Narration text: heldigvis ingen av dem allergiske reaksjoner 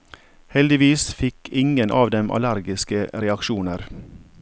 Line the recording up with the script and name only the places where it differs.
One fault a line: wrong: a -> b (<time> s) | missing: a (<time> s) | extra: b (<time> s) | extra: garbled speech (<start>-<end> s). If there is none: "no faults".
extra: fikk (1.1 s)